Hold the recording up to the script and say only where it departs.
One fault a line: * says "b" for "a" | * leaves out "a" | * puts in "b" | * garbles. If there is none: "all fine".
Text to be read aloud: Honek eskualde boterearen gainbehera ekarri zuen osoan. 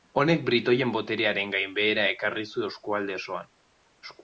* says "britoien" for "eskualde"
* puts in "eskualde"